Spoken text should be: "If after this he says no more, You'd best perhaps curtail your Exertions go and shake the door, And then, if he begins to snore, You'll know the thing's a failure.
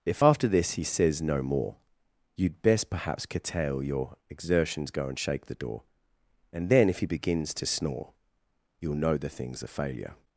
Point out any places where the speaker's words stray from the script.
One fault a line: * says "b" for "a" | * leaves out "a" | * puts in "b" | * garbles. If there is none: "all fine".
all fine